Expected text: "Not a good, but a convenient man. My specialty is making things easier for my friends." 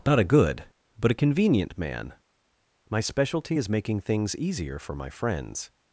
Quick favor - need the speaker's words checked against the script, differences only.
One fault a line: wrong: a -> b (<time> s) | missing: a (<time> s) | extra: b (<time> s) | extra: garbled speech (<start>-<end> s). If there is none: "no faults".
no faults